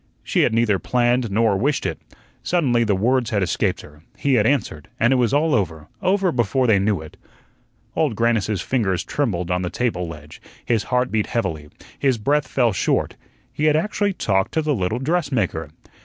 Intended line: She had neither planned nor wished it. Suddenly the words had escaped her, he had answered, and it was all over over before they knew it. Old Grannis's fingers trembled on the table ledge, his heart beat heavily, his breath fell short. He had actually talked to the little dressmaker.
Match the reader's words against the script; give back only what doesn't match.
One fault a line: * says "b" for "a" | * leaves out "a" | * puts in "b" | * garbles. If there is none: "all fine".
all fine